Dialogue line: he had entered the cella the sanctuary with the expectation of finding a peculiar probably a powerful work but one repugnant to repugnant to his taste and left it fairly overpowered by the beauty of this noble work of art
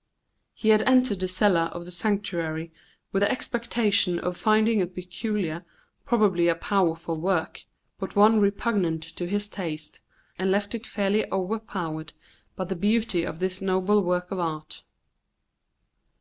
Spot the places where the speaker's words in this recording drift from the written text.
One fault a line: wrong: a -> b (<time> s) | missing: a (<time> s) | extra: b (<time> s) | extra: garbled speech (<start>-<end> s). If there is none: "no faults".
extra: of (1.7 s)
missing: repugnant to (9.3 s)